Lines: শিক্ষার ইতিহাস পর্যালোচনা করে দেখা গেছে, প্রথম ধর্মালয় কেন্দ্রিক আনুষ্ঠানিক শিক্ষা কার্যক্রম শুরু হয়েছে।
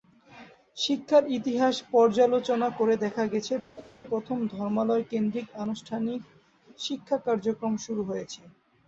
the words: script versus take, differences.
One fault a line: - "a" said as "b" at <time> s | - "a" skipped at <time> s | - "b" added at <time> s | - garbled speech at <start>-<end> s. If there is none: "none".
none